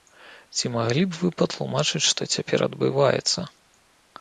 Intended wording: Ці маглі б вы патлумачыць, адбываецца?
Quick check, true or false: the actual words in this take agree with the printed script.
false